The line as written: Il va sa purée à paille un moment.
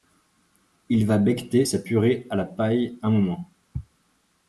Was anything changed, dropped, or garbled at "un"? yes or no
no